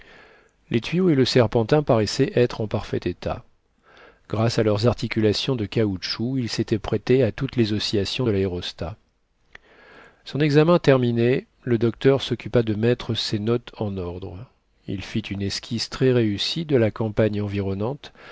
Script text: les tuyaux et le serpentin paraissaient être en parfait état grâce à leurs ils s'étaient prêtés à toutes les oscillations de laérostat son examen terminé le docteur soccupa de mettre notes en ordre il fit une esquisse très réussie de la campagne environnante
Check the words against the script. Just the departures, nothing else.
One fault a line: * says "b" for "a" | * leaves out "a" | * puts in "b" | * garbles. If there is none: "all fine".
* puts in "articulations de caoutchouc"
* puts in "ses"